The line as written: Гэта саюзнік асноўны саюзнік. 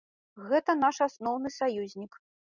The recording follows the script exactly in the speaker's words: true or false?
false